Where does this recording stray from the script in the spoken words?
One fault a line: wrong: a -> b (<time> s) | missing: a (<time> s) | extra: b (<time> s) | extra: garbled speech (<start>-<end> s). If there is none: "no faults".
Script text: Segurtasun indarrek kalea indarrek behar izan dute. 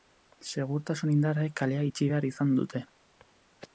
wrong: indarrek -> itxi (1.9 s)